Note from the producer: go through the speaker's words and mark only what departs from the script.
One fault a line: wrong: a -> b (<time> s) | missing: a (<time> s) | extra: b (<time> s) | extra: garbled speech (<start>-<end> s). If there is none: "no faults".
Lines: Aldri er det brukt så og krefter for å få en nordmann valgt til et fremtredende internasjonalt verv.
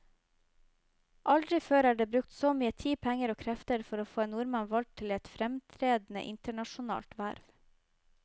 extra: før (1.6 s)
extra: mye tid penger (2.6 s)